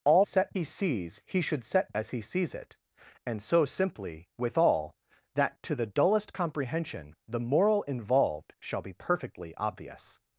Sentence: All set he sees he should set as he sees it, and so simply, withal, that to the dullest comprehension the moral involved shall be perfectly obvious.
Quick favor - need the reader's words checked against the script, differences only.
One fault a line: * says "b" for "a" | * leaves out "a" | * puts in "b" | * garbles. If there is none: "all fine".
all fine